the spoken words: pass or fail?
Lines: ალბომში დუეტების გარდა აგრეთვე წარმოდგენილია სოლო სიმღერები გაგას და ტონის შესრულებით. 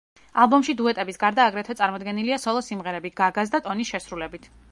pass